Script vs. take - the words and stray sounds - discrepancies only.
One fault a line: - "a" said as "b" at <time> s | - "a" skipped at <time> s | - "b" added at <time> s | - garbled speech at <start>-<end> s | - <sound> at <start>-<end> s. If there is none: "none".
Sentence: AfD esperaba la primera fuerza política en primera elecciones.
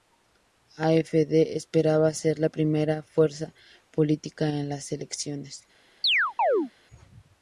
- "ser" added at 2.1 s
- "primera" said as "las" at 4.7 s
- chirp at 6.0-6.7 s